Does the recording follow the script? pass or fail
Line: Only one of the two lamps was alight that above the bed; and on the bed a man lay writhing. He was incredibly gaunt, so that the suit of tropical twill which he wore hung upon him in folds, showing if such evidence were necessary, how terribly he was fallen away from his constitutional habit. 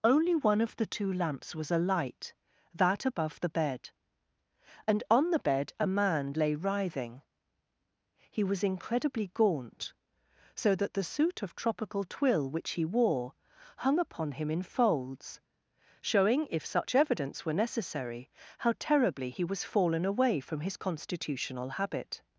pass